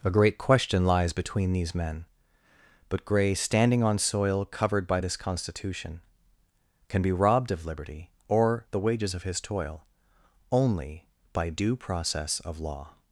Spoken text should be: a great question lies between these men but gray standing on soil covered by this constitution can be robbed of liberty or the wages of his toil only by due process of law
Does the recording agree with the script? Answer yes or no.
yes